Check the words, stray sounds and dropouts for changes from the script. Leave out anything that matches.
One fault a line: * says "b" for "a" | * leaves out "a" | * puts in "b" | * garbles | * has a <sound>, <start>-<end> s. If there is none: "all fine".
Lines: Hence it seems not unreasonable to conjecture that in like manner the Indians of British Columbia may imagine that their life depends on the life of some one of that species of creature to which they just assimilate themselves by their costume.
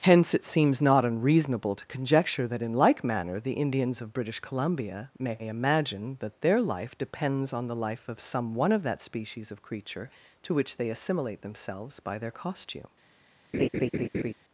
* leaves out "just"
* has a laugh, 13.5-14.3 s